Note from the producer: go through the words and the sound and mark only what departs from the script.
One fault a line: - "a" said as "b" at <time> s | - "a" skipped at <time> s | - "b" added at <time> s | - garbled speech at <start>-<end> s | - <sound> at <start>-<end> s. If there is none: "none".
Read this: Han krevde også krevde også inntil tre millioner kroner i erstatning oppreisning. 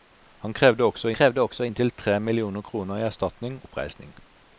none